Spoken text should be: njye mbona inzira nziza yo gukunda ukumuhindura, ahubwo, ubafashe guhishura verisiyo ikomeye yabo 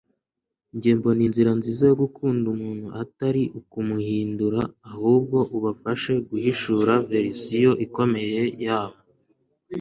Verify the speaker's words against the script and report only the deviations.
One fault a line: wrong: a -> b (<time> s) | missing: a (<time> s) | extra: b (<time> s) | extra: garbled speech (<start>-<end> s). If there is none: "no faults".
extra: umuntu atari (2.5 s)